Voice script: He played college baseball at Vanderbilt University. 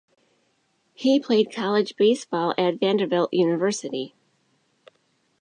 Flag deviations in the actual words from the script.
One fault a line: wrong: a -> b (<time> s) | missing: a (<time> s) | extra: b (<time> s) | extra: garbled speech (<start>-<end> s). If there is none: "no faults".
no faults